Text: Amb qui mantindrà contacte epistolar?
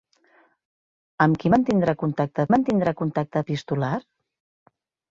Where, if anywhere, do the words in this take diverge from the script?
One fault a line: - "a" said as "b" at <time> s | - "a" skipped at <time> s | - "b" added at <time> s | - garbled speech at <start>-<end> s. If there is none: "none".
- "mantindrà contacte" added at 2.5 s